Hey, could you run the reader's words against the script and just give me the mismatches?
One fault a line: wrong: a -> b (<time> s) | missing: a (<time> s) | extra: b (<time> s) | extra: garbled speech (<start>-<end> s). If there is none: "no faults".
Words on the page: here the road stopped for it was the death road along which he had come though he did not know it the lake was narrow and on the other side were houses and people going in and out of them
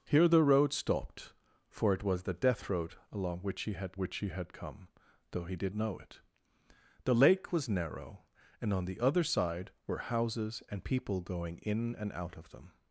extra: which he had (3.9 s)
missing: not (5.7 s)